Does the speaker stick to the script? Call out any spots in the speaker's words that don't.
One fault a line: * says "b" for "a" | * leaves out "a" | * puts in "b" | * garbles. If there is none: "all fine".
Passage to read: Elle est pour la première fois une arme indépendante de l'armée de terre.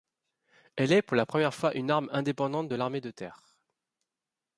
all fine